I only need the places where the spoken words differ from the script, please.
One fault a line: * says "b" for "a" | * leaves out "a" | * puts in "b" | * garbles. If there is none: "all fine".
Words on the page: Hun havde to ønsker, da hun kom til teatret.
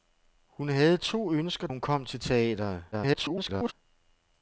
* leaves out "da"
* garbles